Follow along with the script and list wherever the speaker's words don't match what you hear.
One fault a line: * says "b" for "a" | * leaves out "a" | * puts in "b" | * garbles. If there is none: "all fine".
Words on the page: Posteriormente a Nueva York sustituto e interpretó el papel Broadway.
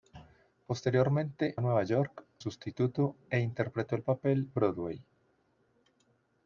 all fine